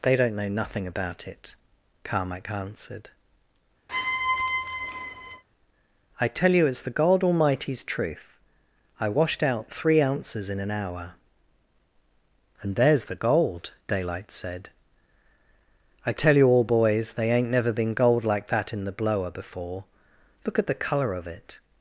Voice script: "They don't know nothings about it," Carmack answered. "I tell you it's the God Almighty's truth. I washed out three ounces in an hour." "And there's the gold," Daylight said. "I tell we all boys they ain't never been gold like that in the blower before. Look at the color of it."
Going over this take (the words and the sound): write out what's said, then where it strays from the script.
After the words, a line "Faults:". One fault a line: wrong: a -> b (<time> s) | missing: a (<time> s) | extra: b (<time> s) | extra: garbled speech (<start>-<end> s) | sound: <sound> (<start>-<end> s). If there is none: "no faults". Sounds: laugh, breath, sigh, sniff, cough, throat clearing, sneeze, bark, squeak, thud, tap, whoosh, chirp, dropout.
"They don't know nothing about it," Carmack answered. "I tell you it's the God Almighty's truth. I washed out three ounces in an hour." "And there's the gold," Daylight said. "I tell you all boys they ain't never been gold like that in the blower before. Look at the color of it."
Faults:
wrong: nothings -> nothing (0.5 s)
sound: squeak (3.9-5.4 s)
wrong: we -> you (16.3 s)